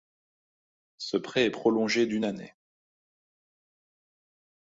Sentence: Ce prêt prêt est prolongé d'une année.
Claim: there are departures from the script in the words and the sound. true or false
true